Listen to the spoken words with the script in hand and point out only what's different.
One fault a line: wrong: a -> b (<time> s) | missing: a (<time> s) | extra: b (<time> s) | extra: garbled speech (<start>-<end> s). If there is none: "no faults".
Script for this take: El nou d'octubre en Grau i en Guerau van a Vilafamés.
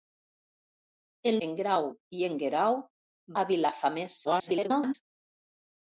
missing: nou d'octubre (1.4 s)
missing: van (2.8 s)
extra: garbled speech (4.2-4.9 s)